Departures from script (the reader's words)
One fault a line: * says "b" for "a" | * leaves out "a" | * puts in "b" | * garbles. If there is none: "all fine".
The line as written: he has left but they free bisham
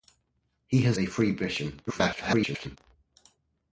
* leaves out "left but"
* garbles